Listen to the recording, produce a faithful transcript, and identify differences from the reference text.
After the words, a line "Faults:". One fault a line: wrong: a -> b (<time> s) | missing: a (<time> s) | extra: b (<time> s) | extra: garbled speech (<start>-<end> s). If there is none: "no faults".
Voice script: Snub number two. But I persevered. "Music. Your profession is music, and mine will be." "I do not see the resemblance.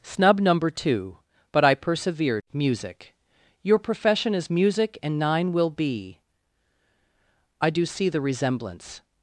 Snub number two. But I persevered. "Music. Your profession is music, and nine will be." "I do see the resemblance.
Faults:
wrong: mine -> nine (5.2 s)
missing: not (7.8 s)